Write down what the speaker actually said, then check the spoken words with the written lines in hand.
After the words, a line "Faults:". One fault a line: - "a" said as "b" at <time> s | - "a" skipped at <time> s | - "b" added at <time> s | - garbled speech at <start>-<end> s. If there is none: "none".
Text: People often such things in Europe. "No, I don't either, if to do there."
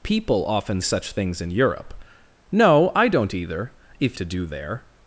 People often such things in Europe. "No, I don't either, if to do there."
Faults:
none